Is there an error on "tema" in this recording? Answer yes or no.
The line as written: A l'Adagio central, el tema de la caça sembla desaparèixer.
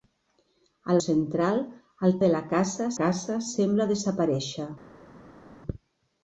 yes